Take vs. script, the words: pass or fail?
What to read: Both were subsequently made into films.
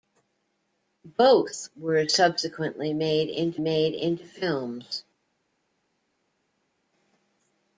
fail